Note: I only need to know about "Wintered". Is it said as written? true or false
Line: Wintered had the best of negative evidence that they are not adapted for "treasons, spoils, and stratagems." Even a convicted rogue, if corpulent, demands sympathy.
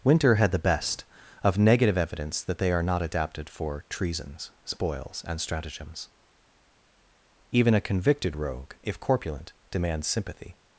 false